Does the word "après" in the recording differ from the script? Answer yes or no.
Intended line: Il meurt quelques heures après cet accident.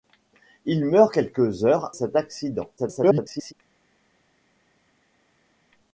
yes